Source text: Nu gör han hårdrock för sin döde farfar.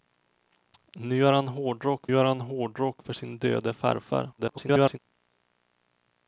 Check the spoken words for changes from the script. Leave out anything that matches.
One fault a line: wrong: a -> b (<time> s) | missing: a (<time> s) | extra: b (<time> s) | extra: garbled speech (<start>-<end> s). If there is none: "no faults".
extra: gör han hårdrock (2.1 s)
extra: garbled speech (4.4-5.0 s)